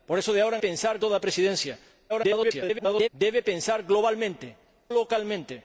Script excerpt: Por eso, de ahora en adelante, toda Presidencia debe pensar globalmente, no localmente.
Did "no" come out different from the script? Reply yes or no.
yes